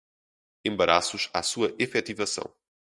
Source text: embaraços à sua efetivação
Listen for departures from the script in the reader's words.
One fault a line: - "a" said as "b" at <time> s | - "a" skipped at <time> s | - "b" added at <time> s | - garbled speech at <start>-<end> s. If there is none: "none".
none